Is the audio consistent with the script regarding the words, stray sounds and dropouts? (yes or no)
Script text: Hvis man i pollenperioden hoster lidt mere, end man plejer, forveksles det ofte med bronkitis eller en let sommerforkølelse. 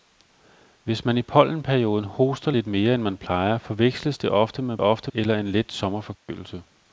no